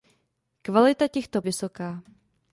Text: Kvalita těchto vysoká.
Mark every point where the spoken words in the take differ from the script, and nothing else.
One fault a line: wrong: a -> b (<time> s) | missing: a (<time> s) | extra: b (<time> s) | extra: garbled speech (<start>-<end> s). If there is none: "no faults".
no faults